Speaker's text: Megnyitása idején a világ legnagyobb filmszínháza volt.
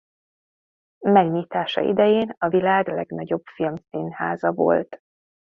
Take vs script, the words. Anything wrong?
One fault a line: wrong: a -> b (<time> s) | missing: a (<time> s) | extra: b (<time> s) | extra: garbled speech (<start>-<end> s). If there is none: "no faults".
no faults